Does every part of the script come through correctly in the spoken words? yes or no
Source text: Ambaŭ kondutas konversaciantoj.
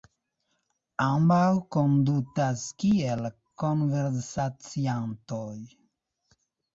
no